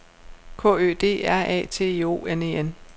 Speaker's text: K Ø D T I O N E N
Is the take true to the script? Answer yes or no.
no